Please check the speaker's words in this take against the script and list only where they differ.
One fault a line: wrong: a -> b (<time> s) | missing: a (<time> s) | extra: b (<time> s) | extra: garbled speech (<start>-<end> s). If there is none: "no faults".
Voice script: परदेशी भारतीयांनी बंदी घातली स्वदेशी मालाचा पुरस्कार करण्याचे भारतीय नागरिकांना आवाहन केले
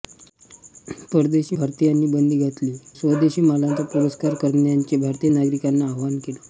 no faults